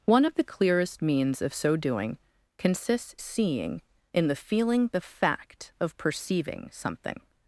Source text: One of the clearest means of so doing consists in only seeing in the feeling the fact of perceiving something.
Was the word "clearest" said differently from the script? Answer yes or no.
no